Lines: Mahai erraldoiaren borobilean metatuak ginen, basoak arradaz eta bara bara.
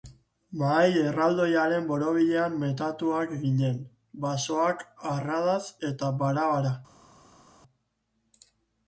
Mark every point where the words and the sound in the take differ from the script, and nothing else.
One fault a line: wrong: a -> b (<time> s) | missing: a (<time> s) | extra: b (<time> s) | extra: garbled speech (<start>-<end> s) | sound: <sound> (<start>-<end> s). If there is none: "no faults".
no faults